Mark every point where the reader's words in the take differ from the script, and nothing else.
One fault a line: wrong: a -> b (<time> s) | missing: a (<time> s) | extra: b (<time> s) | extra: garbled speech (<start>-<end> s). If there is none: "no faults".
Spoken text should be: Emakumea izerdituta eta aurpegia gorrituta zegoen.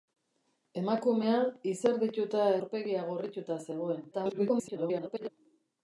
missing: eta (2.5 s)
extra: garbled speech (4.1-5.3 s)